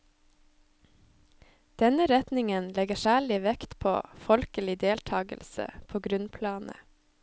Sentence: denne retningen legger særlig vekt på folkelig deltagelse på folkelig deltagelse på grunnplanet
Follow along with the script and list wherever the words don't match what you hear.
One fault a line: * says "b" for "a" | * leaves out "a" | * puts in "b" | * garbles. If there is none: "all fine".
* leaves out "folkelig deltagelse på"